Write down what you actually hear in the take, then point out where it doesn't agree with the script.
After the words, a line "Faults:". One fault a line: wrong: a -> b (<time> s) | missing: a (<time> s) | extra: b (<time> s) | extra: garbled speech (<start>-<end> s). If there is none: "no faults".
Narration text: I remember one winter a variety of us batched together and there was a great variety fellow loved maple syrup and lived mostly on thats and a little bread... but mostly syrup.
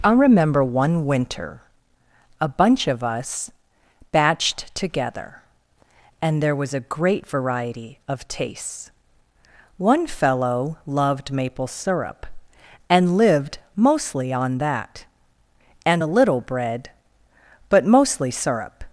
I remember one winter a bunch of us batched together and there was a great variety of tastes. One fellow loved maple syrup and lived mostly on that and a little bread... but mostly syrup.
Faults:
wrong: variety -> bunch (2.5 s)
extra: of tastes One (8.1 s)
wrong: thats -> that (14.6 s)